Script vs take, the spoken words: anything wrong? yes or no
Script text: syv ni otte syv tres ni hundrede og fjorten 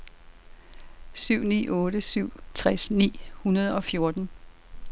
no